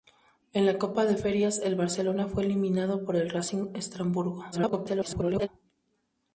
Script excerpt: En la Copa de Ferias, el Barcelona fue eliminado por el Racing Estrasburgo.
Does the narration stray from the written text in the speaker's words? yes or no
yes